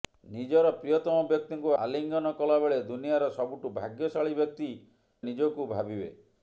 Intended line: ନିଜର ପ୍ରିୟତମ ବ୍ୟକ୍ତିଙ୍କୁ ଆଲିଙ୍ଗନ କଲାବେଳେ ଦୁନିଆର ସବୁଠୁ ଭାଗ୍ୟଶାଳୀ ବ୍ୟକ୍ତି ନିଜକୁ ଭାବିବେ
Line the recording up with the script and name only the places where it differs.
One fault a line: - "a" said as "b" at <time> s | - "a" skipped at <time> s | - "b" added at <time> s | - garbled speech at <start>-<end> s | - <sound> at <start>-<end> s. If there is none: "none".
none